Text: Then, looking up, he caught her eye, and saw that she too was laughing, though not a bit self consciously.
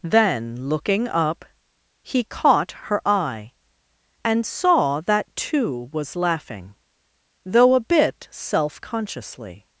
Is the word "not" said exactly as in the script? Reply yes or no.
no